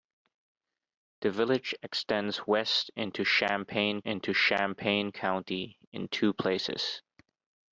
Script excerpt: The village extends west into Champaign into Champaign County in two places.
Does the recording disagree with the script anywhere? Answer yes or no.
no